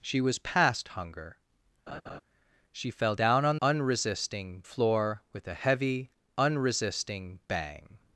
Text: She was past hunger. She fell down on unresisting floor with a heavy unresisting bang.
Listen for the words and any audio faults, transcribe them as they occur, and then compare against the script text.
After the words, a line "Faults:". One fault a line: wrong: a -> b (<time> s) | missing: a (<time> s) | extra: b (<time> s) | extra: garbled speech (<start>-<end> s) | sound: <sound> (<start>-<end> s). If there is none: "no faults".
She was past hunger. She fell down on unresisting floor with a heavy unresisting bang.
Faults:
sound: laugh (1.9-2.2 s)